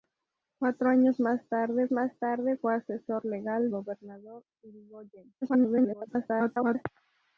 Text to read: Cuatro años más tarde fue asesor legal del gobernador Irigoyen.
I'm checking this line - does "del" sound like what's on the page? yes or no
no